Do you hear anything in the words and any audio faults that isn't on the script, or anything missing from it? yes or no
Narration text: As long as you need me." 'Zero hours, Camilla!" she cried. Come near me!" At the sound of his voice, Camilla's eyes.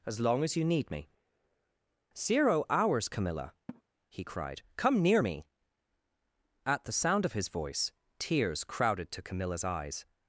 yes